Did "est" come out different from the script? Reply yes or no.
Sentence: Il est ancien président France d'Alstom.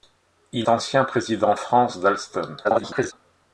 yes